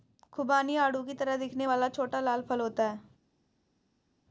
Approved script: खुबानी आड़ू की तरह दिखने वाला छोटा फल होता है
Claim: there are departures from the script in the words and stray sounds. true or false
true